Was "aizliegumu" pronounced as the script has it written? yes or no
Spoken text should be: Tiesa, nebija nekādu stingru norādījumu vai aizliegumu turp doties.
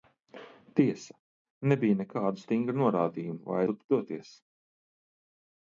no